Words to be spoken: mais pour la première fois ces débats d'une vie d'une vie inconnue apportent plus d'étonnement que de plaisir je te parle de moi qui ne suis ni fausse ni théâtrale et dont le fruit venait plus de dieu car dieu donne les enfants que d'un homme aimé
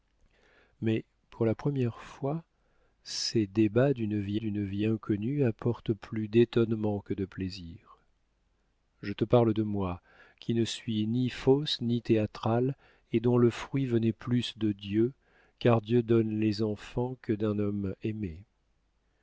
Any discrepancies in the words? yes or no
no